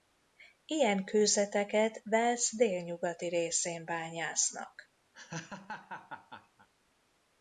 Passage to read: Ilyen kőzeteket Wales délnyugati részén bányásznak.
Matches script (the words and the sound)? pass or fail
fail